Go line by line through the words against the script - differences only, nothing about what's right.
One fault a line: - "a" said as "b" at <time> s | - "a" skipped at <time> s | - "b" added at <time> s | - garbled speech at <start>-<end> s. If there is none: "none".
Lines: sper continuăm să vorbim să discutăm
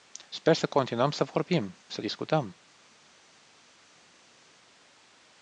- "să" added at 0.5 s